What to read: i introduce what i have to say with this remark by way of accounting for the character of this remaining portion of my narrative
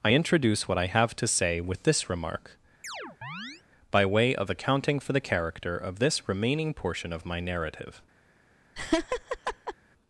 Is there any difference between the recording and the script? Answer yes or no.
no